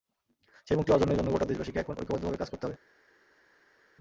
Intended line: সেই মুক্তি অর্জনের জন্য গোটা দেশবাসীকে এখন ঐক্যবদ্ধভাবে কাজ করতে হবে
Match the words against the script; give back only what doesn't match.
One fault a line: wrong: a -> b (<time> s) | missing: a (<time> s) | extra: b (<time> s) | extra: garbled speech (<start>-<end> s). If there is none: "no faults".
no faults